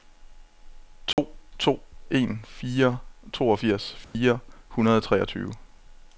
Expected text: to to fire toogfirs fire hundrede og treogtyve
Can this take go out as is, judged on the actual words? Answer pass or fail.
fail